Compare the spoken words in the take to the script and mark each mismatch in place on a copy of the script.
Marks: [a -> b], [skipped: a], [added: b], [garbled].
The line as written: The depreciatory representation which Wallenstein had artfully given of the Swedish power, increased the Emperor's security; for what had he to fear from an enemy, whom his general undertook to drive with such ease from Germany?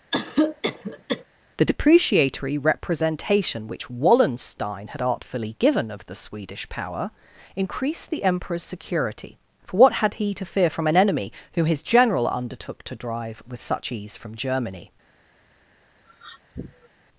The depreciatory representation which Wallenstein had artfully given of the Swedish power, increased the Emperor's security; for what had he to fear from an enemy, whom his general undertook to drive with such ease from Germany?